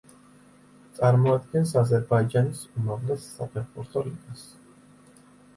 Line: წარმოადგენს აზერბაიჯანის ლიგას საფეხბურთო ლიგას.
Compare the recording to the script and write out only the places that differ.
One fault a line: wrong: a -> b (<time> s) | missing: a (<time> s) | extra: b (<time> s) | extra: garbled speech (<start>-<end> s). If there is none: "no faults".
wrong: ლიგას -> უმაღლეს (2.8 s)